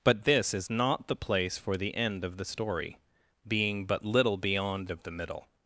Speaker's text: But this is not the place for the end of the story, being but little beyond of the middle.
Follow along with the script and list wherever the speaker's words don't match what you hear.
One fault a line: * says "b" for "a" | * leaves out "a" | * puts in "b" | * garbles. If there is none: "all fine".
all fine